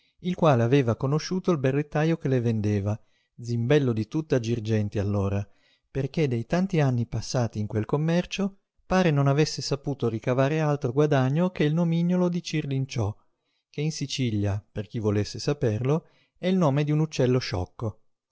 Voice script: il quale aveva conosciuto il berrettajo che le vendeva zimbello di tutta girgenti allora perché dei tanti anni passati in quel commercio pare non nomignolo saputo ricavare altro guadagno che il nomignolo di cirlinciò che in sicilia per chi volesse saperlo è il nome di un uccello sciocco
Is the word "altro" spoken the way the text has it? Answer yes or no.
yes